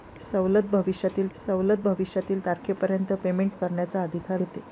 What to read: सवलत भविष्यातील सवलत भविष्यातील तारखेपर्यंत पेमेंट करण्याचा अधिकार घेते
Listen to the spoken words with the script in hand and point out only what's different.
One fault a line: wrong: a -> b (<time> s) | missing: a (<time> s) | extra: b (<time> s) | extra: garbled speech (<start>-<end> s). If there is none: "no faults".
no faults